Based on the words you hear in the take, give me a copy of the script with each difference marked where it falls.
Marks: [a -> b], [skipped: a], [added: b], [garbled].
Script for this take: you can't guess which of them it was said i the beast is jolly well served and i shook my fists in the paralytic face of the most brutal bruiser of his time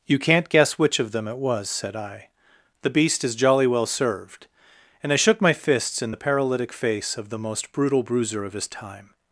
you can't guess which of them it was said i the beast is jolly well served and i shook my fists in the paralytic face of the most brutal bruiser of his time